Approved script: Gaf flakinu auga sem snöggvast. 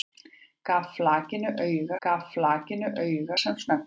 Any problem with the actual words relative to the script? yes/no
yes